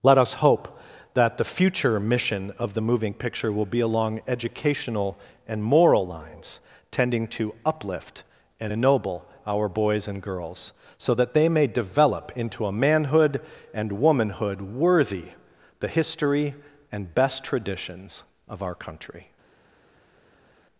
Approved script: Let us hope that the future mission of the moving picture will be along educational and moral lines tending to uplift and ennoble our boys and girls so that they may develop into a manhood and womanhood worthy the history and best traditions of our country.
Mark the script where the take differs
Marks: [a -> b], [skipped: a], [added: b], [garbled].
Let us hope that the future mission of the moving picture will be along educational and moral lines tending to uplift and ennoble our boys and girls so that they may develop into a manhood and womanhood worthy the history and best traditions of our country.